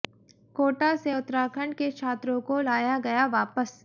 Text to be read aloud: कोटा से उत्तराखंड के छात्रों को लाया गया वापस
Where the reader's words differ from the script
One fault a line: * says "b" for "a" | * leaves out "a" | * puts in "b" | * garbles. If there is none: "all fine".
all fine